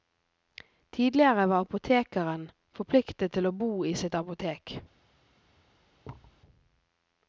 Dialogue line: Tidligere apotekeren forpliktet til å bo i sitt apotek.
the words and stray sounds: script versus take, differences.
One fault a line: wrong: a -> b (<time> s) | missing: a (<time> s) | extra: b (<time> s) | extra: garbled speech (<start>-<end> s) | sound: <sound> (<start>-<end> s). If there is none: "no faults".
extra: var (1.5 s)
sound: thud (6.0-6.4 s)